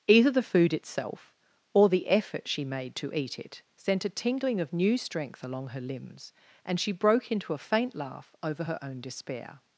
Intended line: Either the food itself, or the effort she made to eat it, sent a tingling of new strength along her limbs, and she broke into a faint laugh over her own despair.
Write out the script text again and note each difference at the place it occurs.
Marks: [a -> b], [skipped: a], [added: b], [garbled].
Either the food itself, or the effort she made to eat it, sent a tingling of new strength along her limbs, and she broke into a faint laugh over her own despair.